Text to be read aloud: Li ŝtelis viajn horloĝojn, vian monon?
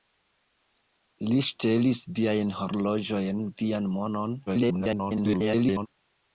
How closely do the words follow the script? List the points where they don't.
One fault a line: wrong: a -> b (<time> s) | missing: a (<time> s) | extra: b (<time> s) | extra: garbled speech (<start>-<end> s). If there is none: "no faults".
extra: garbled speech (4.5-5.9 s)